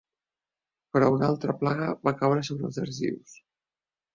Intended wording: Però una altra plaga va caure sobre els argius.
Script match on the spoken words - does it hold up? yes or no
yes